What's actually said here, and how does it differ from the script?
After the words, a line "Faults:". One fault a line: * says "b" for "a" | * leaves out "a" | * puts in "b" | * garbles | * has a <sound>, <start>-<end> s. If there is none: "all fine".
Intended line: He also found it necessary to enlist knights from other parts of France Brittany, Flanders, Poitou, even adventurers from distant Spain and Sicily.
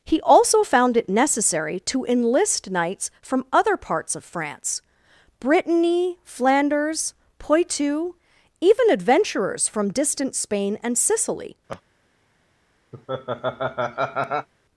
He also found it necessary to enlist knights from other parts of France Brittany, Flanders, Poitou, even adventurers from distant Spain and Sicily.
Faults:
* has a laugh, 11.7-11.8 s
* has a laugh, 12.9-14.5 s